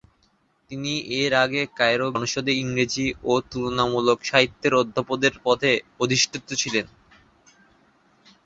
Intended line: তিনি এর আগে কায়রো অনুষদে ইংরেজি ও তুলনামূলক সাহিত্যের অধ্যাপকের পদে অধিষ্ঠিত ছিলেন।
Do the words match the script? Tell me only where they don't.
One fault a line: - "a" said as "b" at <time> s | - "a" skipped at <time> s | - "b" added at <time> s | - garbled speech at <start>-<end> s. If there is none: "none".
none